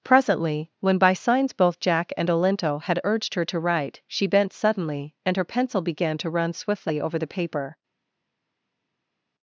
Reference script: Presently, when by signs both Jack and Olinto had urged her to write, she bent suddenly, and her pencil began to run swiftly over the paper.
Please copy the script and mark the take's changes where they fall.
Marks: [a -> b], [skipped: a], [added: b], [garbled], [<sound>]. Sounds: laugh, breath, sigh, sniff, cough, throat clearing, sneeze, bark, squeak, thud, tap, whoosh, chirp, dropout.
Presently, when by signs both Jack and Olinto had urged her to write, she bent suddenly, and her pencil began to run swiftly over the paper.